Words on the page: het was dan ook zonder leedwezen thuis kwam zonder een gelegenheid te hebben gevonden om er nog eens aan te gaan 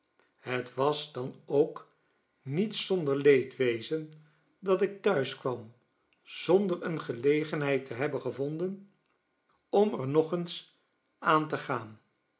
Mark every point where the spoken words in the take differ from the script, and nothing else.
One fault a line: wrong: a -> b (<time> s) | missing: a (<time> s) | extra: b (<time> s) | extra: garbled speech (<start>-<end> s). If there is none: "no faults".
extra: niet (2.4 s)
extra: dat ik (4.6 s)